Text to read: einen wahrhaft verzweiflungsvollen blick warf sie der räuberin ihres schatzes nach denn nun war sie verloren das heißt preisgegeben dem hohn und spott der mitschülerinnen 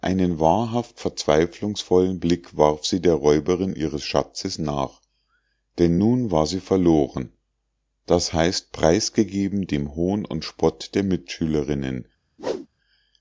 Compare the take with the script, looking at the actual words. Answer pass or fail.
pass